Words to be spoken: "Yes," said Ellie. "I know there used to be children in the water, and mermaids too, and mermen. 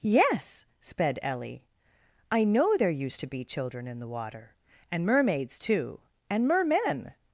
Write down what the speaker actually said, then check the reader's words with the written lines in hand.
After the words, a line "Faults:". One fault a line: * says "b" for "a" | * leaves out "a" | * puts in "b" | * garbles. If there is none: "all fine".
"Yes," sped Ellie. "I know there used to be children in the water, and mermaids too, and mermen.
Faults:
* says "sped" for "said"